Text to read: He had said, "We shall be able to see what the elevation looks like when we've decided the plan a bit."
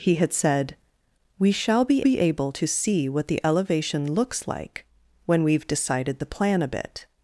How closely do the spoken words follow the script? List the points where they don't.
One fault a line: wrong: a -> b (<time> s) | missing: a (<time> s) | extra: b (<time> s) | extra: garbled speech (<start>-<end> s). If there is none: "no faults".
extra: be (2.0 s)